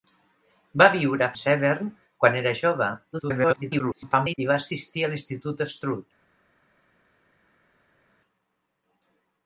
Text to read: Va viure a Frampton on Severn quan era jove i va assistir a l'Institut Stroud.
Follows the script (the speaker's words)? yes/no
no